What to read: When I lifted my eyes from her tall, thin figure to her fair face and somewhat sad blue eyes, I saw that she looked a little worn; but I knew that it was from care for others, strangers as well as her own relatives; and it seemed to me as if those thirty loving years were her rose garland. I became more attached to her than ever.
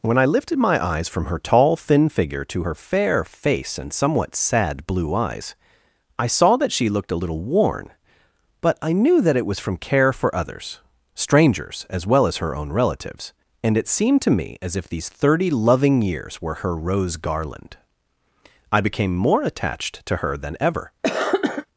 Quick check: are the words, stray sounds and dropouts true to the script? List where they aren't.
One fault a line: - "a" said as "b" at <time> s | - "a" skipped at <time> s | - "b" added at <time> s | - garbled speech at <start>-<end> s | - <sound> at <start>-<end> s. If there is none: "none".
- "those" said as "these" at 14.9 s
- cough at 21.0-21.7 s